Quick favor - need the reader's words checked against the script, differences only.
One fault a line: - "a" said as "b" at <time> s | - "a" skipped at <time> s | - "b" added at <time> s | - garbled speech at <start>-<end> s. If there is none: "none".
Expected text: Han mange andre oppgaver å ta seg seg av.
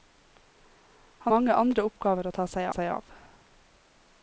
none